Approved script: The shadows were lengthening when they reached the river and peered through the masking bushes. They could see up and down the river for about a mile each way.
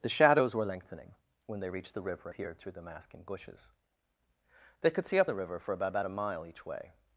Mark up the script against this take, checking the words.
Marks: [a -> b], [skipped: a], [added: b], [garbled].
The shadows were lengthening when they reached the river [skipped: and] peered through the masking bushes. They could see up [skipped: and down] the river for about [added: about] a mile each way.